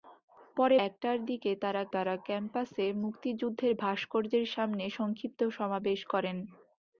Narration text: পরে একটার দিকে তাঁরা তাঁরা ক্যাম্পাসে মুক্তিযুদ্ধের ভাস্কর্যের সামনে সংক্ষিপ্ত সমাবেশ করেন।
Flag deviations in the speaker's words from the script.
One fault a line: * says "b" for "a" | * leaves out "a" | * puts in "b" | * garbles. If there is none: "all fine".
all fine